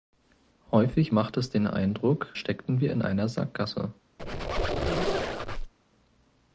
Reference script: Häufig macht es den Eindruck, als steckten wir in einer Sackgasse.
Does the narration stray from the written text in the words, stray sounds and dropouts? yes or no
yes